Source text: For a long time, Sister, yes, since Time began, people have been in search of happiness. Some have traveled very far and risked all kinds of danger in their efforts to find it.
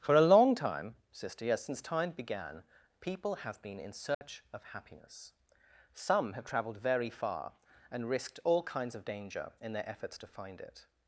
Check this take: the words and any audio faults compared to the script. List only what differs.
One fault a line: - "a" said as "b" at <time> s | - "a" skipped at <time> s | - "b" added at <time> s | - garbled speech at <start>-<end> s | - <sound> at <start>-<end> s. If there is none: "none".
- dropout at 4.1-4.2 s